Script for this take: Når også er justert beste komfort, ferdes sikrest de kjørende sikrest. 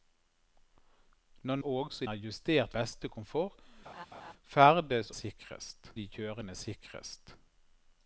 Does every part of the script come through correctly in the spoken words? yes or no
yes